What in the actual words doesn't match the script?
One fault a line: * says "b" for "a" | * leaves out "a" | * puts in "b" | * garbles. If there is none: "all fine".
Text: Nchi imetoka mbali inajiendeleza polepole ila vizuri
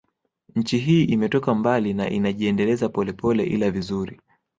* puts in "hii"
* puts in "na"